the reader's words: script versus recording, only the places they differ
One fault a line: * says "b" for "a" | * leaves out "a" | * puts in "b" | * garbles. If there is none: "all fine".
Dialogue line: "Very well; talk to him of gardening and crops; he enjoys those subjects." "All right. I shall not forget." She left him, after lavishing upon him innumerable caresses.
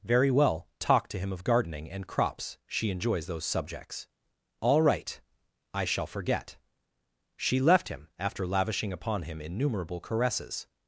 * says "she" for "he"
* leaves out "not"